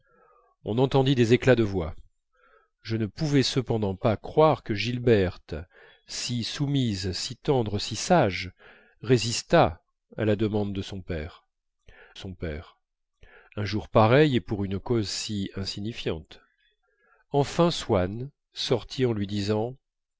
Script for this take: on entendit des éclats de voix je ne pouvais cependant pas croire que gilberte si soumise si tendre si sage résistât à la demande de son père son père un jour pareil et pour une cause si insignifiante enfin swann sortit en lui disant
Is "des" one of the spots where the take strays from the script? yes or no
no